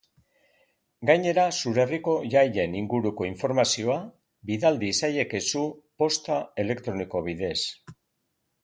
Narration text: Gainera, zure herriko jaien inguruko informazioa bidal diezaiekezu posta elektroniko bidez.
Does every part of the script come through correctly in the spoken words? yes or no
yes